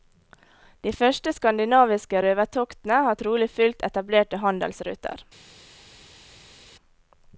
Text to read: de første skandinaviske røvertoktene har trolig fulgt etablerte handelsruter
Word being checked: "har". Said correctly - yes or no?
yes